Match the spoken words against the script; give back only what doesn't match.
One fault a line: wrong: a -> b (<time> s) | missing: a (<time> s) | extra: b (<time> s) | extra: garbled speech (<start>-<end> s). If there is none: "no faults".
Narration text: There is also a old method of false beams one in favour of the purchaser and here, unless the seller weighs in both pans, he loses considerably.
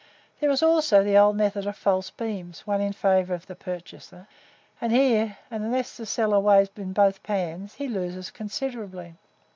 wrong: a -> the (1.0 s)